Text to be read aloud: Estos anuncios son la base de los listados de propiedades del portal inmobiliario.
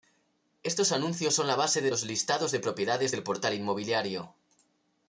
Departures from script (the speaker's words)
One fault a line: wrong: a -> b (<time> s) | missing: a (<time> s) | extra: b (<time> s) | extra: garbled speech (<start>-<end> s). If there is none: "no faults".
no faults